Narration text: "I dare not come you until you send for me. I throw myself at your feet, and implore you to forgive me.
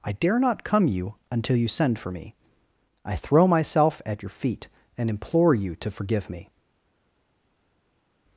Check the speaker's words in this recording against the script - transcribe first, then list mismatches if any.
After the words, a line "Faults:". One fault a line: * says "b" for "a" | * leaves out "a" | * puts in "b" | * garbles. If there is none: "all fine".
"I dare not come you until you send for me. I throw myself at your feet, and implore you to forgive me.
Faults:
all fine